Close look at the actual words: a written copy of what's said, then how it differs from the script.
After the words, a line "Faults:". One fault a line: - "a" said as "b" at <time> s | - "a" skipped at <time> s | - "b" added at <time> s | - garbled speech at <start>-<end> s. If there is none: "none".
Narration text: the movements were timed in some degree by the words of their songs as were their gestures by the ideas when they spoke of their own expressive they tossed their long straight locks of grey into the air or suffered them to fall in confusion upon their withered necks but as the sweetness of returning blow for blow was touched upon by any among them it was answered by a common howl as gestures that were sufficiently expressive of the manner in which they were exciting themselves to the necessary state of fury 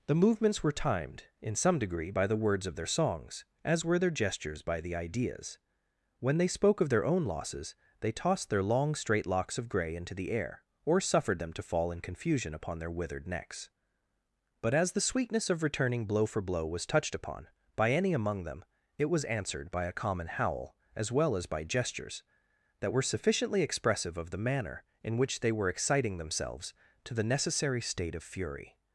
the movements were timed in some degree by the words of their songs as were their gestures by the ideas when they spoke of their own losses they tossed their long straight locks of grey into the air or suffered them to fall in confusion upon their withered necks but as the sweetness of returning blow for blow was touched upon by any among them it was answered by a common howl as well as by gestures that were sufficiently expressive of the manner in which they were exciting themselves to the necessary state of fury
Faults:
- "expressive" said as "losses" at 7.3 s
- "well as by" added at 21.1 s